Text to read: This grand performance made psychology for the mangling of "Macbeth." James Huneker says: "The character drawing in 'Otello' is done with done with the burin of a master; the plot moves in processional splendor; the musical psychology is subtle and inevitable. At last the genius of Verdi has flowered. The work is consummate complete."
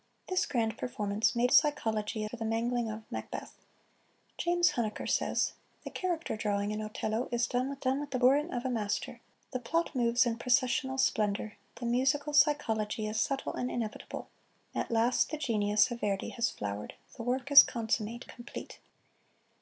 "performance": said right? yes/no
yes